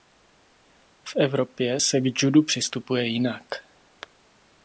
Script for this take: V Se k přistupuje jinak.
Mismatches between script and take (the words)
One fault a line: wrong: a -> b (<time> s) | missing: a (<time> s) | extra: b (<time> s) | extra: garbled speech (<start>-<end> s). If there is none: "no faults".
extra: Evropě (1.1 s)
extra: judu (2.2 s)